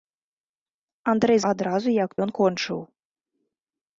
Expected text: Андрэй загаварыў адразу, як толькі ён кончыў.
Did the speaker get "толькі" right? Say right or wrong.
wrong